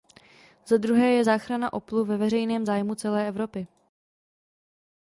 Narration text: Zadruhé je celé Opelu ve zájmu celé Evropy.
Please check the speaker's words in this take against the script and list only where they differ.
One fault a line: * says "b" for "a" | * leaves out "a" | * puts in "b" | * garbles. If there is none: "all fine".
* says "záchrana" for "celé"
* puts in "veřejném"